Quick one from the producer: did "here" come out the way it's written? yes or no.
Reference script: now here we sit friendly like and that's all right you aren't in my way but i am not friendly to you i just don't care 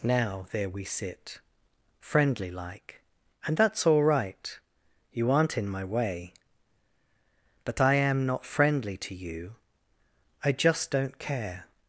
no